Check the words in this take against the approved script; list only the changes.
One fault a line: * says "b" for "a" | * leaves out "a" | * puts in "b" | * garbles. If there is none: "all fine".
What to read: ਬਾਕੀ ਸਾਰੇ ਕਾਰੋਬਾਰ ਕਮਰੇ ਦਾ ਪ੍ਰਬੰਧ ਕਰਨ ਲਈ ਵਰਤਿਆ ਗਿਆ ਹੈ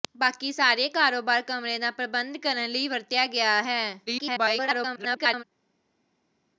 * garbles